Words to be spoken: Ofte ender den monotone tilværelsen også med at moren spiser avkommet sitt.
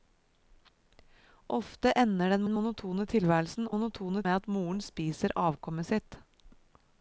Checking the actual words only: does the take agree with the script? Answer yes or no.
no